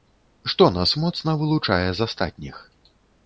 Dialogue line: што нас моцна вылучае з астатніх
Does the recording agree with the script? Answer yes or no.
yes